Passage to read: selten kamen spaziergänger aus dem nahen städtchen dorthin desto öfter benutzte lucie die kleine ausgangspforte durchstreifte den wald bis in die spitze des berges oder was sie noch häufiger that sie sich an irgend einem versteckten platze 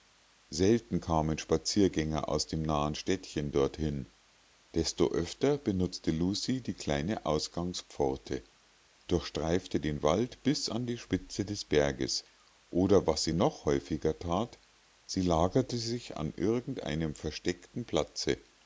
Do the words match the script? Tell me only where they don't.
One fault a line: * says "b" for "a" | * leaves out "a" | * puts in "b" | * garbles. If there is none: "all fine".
* says "an" for "in"
* puts in "lagerte"